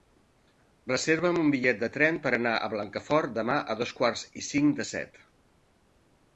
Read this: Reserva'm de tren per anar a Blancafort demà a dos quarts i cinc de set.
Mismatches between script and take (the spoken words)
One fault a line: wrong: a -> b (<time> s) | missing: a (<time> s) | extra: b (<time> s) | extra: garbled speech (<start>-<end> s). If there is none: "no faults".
extra: un bitllet (1.4 s)